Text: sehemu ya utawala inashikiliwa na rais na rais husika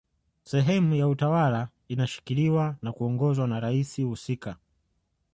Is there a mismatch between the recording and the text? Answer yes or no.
yes